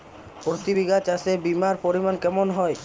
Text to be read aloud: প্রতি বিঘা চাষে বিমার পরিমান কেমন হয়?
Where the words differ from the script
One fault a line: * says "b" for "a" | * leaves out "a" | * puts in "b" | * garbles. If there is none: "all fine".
all fine